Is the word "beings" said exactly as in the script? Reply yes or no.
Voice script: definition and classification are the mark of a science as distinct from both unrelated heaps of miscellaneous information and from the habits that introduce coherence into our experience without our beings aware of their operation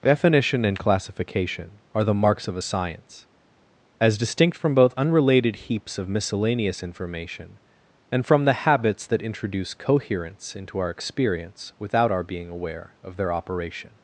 no